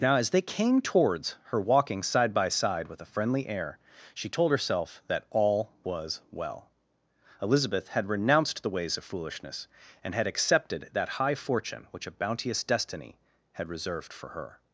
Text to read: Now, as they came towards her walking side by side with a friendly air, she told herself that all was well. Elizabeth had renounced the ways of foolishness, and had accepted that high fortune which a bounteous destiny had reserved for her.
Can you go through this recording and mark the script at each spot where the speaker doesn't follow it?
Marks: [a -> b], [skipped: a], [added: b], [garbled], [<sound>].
Now, as they came towards her walking side by side with a friendly air, she told herself that all was well. Elizabeth had renounced the ways of foolishness, and had accepted that high fortune which a bounteous destiny had reserved for her.